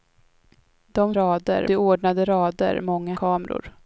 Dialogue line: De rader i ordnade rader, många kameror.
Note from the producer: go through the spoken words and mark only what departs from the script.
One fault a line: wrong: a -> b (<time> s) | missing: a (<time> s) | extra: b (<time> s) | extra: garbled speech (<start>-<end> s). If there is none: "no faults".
no faults